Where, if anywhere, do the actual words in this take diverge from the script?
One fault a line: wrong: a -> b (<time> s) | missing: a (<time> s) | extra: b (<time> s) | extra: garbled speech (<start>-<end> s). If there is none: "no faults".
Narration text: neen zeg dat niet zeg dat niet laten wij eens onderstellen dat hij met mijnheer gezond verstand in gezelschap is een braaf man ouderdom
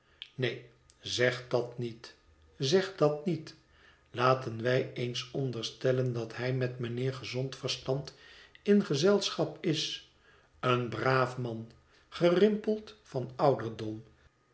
extra: gerimpeld van (12.1 s)